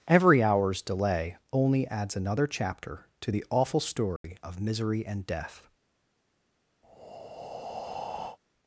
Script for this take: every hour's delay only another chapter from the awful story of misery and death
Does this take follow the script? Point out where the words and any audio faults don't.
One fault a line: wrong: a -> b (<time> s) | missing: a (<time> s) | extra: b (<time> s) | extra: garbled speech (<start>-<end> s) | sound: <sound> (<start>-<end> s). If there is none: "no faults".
extra: adds (1.9 s)
wrong: from -> to (3.2 s)
sound: dropout (4.2-4.2 s)
sound: breath (6.8-8.4 s)